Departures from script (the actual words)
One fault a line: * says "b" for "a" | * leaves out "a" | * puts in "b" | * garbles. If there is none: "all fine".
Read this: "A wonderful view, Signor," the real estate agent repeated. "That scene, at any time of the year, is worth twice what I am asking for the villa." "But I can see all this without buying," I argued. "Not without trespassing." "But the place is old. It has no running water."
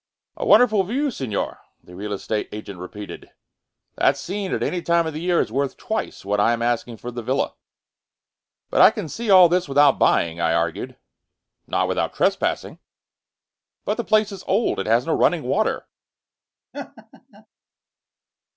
all fine